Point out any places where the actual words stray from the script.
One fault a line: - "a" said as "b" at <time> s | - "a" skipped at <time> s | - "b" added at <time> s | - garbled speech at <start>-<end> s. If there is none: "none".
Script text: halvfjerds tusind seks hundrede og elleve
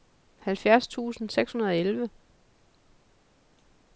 none